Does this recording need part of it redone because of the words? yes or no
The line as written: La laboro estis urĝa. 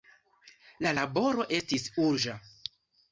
no